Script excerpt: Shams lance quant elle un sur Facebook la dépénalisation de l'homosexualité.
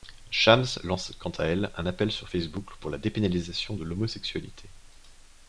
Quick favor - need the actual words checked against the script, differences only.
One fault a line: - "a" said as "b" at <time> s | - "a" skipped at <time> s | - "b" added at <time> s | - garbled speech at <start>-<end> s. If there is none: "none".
- "à" added at 1.3 s
- "appel" added at 1.9 s
- "pour" added at 2.8 s